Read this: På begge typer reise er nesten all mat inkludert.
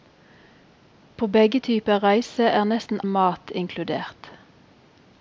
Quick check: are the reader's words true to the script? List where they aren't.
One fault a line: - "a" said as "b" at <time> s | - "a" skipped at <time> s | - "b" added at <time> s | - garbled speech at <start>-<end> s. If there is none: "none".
- "all" skipped at 3.0 s